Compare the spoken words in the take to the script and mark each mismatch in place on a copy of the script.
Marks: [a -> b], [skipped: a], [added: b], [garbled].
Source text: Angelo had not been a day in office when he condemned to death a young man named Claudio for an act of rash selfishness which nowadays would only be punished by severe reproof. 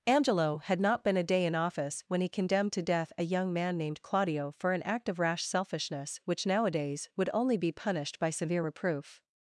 Angelo had not been a day in office when he condemned to death a young man named Claudio for an act of rash selfishness which nowadays would only be punished by severe reproof.